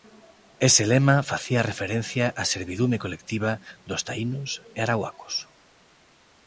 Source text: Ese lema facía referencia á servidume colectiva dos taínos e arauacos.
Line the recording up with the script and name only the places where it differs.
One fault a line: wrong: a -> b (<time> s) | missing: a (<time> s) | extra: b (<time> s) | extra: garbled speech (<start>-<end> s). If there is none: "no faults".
no faults